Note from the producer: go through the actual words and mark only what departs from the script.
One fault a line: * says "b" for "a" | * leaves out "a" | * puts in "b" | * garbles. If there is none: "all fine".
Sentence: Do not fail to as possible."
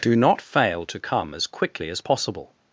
* puts in "come as quickly"